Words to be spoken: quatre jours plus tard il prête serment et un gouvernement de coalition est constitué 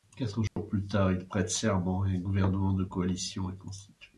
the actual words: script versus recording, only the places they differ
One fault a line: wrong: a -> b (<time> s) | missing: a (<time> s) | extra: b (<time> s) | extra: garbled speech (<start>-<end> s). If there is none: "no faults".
no faults